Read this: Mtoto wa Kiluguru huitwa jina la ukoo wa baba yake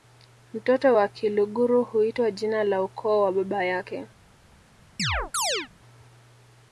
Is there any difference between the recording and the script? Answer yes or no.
no